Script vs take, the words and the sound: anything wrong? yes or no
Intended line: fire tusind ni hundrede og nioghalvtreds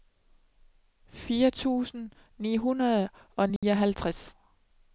yes